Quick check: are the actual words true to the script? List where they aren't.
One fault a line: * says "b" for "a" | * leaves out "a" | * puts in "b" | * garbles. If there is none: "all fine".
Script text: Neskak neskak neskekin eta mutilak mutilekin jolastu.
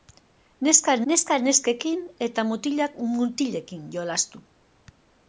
all fine